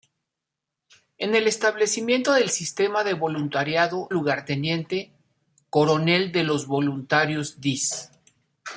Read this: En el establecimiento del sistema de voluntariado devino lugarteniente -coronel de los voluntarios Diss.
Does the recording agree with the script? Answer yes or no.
no